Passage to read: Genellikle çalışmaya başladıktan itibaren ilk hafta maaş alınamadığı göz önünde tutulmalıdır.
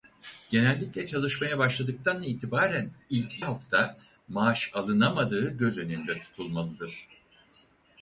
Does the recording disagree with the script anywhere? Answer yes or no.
no